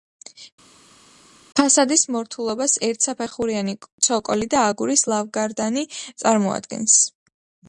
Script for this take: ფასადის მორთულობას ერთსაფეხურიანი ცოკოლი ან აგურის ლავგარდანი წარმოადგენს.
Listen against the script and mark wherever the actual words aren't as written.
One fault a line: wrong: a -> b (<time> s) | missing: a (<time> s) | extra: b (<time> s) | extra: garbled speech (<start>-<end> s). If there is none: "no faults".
wrong: ან -> და (4.5 s)